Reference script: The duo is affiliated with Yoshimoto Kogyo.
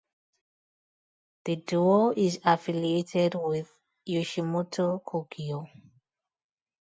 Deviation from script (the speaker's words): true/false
false